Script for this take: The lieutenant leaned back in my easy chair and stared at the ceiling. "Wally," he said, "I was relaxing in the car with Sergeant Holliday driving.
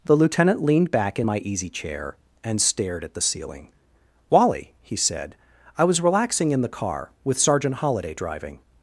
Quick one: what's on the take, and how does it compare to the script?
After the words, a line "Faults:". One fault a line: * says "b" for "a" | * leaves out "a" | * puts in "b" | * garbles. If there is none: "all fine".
The lieutenant leaned back in my easy chair and stared at the ceiling. "Wally," he said, "I was relaxing in the car with Sergeant Holliday driving.
Faults:
all fine